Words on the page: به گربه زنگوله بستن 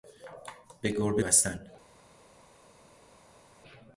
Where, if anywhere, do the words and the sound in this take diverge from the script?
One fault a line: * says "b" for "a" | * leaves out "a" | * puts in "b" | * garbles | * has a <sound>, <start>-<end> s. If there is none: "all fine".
* leaves out "زنگوله"